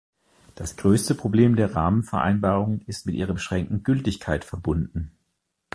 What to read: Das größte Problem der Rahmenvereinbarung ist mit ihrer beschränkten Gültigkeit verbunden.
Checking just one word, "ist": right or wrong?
right